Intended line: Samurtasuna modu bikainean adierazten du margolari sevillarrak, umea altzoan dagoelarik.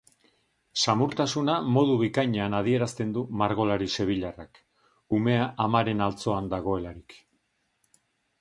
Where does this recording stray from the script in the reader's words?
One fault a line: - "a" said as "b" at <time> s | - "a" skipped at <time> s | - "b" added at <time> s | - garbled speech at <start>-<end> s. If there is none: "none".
- "amaren" added at 5.7 s